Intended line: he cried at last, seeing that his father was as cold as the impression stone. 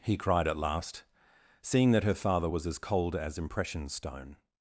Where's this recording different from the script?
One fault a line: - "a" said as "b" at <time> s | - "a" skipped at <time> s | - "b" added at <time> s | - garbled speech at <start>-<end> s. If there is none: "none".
- "his" said as "her" at 2.0 s
- "the" skipped at 3.4 s